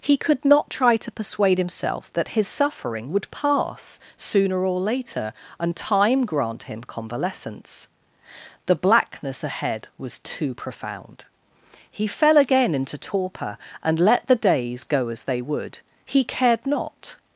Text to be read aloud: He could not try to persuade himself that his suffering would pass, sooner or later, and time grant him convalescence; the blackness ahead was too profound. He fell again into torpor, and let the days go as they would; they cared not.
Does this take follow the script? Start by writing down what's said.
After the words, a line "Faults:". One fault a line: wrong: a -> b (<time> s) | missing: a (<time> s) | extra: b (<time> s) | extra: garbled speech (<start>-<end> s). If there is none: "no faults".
He could not try to persuade himself that his suffering would pass, sooner or later, and time grant him convalescence; the blackness ahead was too profound. He fell again into torpor, and let the days go as they would; he cared not.
Faults:
wrong: they -> he (16.0 s)